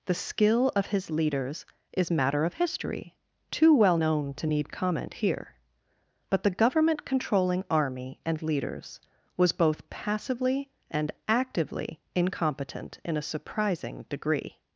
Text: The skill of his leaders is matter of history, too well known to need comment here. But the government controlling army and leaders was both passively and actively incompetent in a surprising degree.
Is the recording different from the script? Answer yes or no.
no